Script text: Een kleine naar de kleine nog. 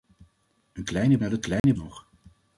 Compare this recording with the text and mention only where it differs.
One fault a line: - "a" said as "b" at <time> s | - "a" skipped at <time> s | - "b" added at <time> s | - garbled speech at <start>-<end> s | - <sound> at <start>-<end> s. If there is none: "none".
- dropout at 1.6-1.6 s